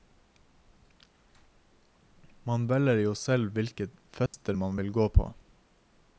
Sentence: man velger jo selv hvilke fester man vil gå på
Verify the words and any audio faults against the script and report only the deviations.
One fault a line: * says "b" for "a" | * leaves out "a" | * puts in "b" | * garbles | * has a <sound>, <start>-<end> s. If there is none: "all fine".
* has a dropout, 4.3-4.3 s